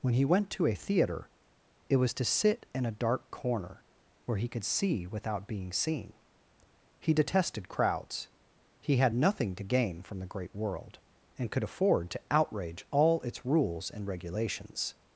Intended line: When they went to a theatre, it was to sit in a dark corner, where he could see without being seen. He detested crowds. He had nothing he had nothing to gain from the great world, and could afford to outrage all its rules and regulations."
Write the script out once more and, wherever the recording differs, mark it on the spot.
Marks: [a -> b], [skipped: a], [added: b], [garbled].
When [they -> he] went to a theatre, it was to sit in a dark corner, where he could see without being seen. He detested crowds. He had nothing [skipped: he had nothing] to gain from the great world, and could afford to outrage all its rules and regulations."